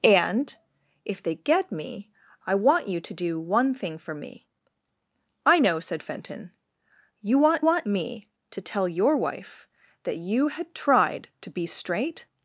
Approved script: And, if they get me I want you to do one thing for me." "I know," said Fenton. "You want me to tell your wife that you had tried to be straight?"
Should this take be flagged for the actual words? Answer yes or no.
yes